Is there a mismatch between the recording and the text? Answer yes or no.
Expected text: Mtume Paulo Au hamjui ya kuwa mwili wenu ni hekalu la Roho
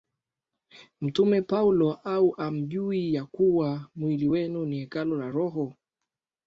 no